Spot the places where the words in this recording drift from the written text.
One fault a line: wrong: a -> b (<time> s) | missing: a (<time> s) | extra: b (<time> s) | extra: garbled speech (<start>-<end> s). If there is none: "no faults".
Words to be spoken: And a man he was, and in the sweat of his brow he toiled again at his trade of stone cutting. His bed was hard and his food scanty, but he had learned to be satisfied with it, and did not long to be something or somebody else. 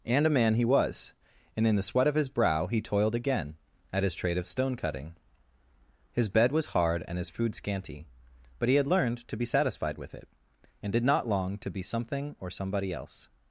no faults